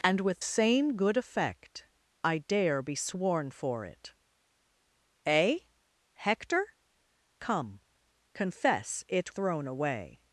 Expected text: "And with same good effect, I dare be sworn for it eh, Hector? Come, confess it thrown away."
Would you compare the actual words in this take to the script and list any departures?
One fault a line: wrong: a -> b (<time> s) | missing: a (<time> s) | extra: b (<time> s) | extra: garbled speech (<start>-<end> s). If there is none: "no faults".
no faults